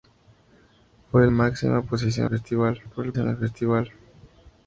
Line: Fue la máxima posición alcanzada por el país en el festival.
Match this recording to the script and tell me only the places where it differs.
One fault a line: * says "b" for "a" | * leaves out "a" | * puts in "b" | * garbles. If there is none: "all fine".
* leaves out "la"
* says "festival" for "alcanzada"
* leaves out "país"